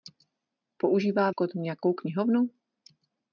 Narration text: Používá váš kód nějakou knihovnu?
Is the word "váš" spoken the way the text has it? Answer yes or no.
no